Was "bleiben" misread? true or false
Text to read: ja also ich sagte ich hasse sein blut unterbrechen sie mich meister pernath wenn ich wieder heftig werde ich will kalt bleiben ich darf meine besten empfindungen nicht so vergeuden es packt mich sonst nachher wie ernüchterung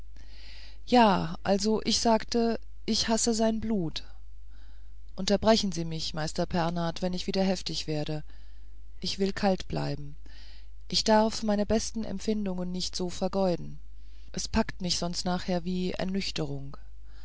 false